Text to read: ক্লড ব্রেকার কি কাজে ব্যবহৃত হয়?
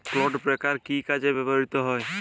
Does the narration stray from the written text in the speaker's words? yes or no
no